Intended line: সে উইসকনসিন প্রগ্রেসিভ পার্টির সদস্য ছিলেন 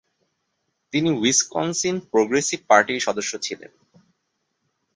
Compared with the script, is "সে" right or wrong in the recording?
wrong